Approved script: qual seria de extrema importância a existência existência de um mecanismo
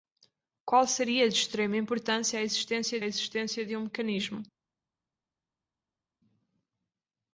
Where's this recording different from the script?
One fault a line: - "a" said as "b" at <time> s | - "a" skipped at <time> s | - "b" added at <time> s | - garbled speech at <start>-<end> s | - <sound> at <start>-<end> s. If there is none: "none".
none